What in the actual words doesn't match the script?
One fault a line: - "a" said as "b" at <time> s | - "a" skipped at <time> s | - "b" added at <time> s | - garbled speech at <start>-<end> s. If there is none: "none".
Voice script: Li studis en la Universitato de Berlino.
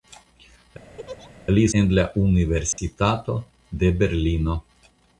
- "studis" skipped at 1.6 s